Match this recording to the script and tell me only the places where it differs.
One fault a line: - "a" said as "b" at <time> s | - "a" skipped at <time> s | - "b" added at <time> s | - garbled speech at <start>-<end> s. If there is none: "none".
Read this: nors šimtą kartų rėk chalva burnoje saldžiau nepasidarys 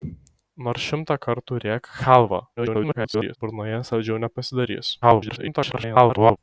- garbled speech at 2.6-3.4 s
- garbled speech at 5.0-6.4 s